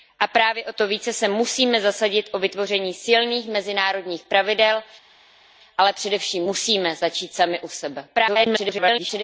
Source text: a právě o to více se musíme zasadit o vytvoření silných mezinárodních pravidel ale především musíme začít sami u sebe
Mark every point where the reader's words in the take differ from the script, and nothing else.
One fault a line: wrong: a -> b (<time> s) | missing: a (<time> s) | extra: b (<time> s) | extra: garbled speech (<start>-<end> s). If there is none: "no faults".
extra: garbled speech (8.1-9.2 s)